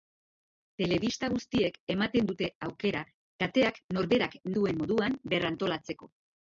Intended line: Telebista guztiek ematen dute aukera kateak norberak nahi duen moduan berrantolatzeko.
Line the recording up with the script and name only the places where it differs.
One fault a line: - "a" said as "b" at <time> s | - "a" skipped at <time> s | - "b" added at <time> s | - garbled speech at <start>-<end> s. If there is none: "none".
- "nahi" skipped at 4.4 s